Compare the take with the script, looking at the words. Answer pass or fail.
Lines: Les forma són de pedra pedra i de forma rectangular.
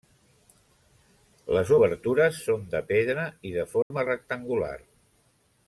fail